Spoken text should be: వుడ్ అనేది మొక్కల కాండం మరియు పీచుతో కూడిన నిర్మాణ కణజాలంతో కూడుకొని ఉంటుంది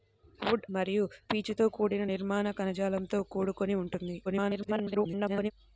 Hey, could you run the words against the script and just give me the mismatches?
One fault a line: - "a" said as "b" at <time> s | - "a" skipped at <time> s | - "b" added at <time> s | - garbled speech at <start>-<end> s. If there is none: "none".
- "అనేది మొక్కల కాండం" skipped at 0.6 s
- garbled speech at 4.2-5.5 s